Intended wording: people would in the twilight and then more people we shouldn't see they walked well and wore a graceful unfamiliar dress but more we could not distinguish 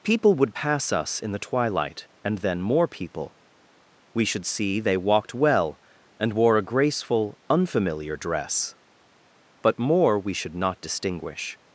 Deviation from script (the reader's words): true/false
true